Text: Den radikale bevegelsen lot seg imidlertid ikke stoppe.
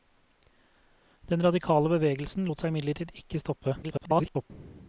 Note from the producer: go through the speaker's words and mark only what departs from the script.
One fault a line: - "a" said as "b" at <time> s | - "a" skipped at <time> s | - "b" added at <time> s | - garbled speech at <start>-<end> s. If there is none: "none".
- garbled speech at 3.8-4.5 s